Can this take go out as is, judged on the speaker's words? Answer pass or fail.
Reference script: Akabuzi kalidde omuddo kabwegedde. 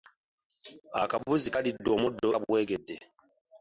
pass